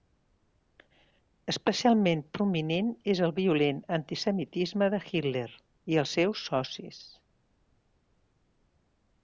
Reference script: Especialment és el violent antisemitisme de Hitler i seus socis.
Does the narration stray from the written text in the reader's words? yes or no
yes